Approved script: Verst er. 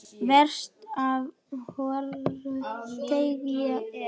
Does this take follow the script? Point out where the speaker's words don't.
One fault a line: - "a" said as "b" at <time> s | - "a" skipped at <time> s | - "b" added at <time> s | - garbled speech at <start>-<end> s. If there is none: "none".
- "ef hvoru tveggja" added at 1.0 s